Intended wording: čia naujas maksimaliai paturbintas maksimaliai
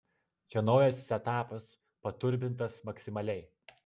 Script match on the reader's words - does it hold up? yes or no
no